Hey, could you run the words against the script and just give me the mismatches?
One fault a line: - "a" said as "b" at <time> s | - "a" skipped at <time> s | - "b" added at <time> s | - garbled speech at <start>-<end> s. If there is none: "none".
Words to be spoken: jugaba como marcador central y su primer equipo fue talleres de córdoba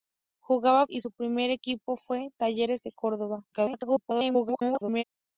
- "como marcador central" skipped at 0.9 s
- garbled speech at 3.5-5.0 s